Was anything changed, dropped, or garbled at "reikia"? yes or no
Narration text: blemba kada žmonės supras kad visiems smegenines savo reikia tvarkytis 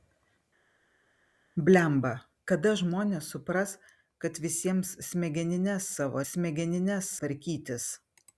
yes